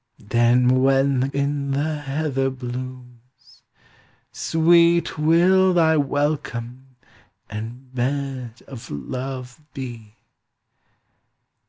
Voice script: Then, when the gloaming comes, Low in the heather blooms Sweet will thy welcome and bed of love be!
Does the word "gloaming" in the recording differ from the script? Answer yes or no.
yes